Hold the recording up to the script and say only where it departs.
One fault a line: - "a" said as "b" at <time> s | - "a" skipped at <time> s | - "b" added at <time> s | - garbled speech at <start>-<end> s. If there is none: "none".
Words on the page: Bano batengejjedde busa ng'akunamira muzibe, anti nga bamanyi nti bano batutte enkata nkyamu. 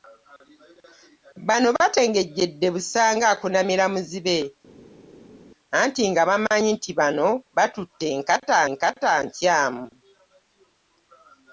- "enkata" added at 8.7 s